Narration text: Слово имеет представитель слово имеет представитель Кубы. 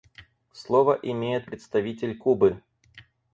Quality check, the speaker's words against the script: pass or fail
fail